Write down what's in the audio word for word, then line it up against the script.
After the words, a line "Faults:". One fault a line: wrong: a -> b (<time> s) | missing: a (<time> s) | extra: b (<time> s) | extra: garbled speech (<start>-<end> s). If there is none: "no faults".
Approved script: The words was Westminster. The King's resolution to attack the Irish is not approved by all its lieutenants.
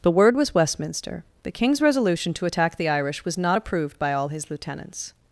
The word was Westminster. The King's resolution to attack the Irish was not approved by all his lieutenants.
Faults:
wrong: words -> word (0.1 s)
wrong: is -> was (3.3 s)
wrong: its -> his (4.3 s)